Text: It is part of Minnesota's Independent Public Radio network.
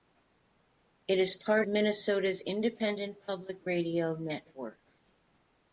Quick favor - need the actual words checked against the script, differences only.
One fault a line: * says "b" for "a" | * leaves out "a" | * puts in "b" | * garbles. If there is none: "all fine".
* leaves out "of"